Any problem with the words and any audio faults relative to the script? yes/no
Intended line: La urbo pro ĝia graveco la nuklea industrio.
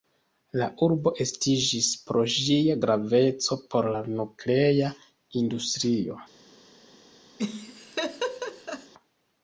yes